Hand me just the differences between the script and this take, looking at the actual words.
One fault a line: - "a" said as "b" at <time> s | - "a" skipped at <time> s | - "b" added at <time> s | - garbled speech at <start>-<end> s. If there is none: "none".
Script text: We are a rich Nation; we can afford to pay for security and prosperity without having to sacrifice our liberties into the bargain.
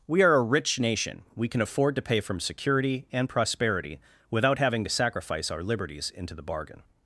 - "for" said as "from" at 2.2 s